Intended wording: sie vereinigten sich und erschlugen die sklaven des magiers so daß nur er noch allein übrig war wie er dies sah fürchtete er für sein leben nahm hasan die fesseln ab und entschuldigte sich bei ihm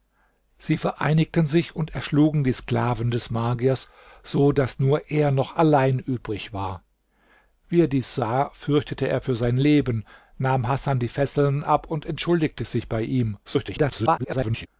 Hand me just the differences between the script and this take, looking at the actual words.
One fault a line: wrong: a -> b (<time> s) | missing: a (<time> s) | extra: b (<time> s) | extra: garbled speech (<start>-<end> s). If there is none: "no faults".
extra: garbled speech (13.4-14.7 s)